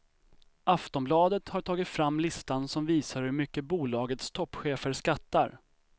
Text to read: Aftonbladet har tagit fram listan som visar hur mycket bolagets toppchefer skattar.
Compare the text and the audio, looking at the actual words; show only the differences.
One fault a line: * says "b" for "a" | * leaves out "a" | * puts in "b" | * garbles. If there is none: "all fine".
all fine